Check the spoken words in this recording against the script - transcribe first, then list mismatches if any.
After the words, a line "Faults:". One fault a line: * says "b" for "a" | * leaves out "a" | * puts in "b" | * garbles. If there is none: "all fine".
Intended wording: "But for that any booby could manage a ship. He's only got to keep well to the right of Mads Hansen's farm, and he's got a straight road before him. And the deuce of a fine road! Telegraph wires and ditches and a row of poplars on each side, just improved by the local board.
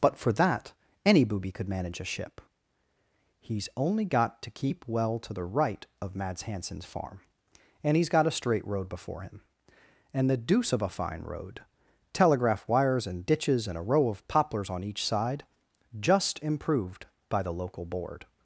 "But for that any booby could manage a ship. He's only got to keep well to the right of Mads Hansen's farm, and he's got a straight road before him. And the deuce of a fine road! Telegraph wires and ditches and a row of poplars on each side, just improved by the local board.
Faults:
all fine